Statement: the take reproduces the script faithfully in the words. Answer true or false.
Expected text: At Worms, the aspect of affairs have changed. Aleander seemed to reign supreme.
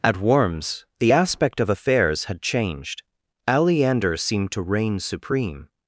false